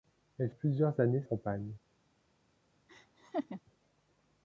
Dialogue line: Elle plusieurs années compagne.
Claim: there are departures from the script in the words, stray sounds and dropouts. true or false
true